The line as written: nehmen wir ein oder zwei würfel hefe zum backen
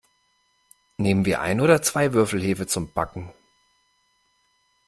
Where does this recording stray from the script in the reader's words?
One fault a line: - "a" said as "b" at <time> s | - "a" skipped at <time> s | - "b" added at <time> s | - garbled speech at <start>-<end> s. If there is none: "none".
none